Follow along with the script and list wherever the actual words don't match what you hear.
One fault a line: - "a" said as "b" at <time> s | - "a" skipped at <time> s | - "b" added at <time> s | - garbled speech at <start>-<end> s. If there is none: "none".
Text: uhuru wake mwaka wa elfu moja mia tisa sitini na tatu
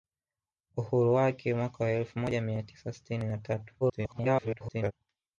- garbled speech at 3.8-4.9 s